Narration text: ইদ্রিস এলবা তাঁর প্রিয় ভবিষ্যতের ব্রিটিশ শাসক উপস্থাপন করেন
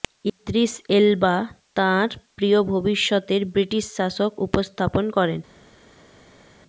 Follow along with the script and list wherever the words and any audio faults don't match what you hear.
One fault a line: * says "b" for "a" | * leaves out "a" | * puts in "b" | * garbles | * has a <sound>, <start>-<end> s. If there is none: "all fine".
all fine